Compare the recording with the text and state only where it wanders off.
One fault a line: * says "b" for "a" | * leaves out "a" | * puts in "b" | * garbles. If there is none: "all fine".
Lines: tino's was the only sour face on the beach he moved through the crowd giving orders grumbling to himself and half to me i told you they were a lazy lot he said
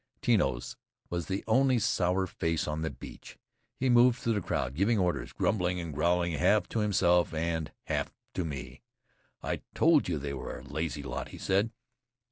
* puts in "and growling half"